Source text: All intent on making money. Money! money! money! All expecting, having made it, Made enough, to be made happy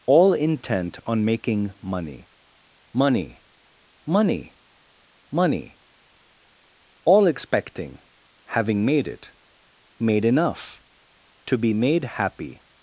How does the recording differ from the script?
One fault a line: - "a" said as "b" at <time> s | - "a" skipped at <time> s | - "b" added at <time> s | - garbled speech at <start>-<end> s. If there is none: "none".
none